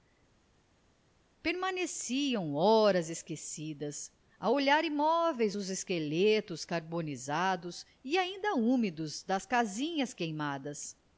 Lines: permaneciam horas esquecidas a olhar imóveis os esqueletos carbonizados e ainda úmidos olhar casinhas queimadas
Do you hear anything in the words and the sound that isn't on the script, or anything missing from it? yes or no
yes